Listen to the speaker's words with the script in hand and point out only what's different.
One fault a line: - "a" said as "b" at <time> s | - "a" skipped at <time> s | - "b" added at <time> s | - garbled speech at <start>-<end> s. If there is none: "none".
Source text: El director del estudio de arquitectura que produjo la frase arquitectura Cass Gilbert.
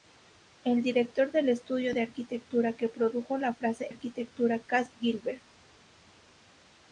none